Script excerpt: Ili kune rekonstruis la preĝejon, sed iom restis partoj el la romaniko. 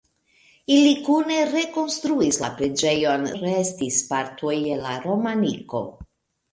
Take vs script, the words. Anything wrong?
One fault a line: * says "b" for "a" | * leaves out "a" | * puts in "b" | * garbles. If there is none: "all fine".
* leaves out "sed iom"